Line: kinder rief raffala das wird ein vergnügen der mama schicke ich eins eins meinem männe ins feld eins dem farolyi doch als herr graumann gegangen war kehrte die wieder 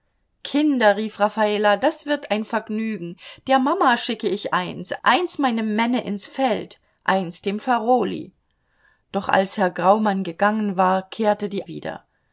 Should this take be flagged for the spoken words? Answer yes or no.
no